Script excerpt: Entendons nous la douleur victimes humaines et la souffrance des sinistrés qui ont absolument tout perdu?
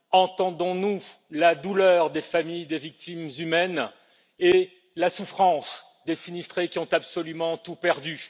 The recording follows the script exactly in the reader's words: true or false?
false